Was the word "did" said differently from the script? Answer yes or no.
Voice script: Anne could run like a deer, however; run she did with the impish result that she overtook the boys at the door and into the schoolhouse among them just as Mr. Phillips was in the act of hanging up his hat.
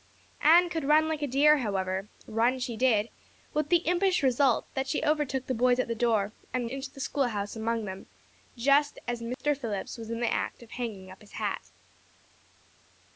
no